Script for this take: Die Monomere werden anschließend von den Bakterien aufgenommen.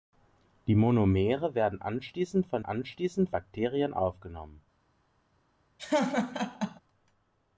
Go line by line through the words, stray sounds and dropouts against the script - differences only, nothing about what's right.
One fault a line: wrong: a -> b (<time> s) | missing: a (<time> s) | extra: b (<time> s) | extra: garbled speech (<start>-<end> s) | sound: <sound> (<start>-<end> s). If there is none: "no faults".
wrong: den -> anschließend (2.6 s)
sound: laugh (5.8-6.8 s)